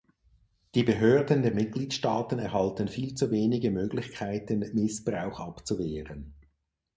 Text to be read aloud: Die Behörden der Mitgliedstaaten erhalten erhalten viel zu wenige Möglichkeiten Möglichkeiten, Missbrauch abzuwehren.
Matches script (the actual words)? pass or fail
fail